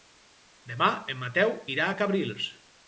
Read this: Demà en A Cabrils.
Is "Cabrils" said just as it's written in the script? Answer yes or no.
yes